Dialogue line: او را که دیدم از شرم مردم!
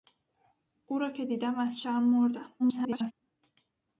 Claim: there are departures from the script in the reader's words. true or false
true